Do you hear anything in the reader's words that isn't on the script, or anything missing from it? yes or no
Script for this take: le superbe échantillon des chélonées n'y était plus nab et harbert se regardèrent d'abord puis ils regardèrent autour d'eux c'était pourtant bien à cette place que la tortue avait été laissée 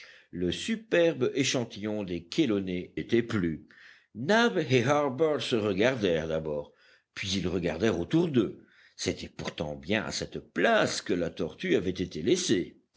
yes